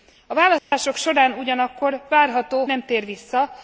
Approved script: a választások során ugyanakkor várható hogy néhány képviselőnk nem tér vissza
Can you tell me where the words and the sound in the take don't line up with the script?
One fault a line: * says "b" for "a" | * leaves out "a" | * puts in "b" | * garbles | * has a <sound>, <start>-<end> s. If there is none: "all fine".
* has a dropout, 0.6-0.7 s
* leaves out "hogy néhány képviselőnk"